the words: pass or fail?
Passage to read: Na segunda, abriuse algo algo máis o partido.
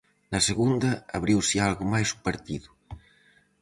fail